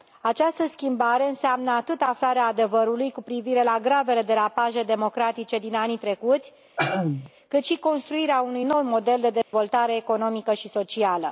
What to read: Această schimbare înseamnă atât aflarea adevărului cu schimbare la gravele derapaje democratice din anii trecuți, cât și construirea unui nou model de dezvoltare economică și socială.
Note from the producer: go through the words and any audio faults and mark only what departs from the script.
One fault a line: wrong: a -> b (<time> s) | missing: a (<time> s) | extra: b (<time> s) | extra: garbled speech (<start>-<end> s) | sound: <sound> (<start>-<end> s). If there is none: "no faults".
wrong: schimbare -> privire (3.2 s)
sound: throat clearing (6.8-7.3 s)
sound: dropout (9.4-9.5 s)